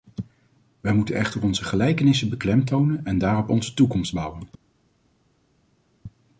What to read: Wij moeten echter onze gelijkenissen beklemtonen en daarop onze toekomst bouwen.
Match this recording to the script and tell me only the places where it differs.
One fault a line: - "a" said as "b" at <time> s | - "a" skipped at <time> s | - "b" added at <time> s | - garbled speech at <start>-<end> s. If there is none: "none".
none